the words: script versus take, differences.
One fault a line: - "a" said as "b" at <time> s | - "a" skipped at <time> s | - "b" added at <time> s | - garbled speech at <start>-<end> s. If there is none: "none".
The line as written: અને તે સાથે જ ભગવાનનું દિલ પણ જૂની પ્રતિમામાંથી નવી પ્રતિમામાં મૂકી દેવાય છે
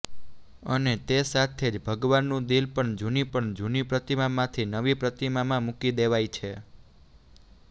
- "પણ જૂની" added at 3.3 s